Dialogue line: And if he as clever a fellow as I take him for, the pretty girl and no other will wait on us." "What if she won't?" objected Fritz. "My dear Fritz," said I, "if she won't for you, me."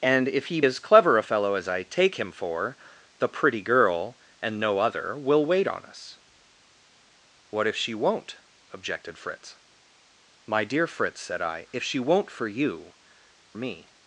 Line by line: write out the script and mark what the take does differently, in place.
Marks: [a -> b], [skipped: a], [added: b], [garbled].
And if he as clever a fellow as I take him for, the pretty girl and no other will wait on us." "What if she won't?" objected Fritz. "My dear Fritz," said I, "if she won't for you, me."